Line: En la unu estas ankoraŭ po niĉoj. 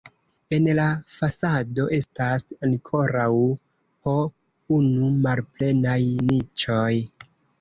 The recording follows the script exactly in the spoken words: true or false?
false